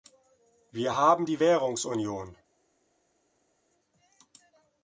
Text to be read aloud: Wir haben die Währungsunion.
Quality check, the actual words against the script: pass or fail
pass